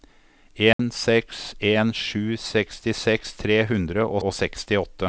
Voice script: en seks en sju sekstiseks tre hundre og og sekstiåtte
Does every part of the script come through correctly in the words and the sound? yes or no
no